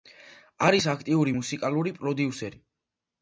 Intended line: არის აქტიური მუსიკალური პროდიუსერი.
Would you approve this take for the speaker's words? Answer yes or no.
yes